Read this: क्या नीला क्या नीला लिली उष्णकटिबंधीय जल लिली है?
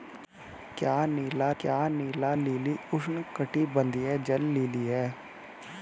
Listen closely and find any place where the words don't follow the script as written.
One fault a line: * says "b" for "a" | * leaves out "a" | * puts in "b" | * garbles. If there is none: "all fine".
all fine